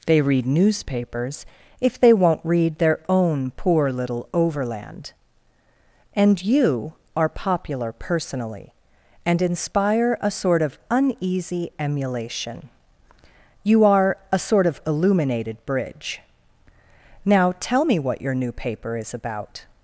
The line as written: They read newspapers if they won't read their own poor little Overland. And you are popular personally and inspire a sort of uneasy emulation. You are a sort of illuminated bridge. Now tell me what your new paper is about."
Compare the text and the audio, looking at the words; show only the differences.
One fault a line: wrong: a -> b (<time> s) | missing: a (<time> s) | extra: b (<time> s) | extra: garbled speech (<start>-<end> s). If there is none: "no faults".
no faults